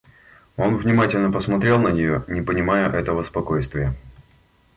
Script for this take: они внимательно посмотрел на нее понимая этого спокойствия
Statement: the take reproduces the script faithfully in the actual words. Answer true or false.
false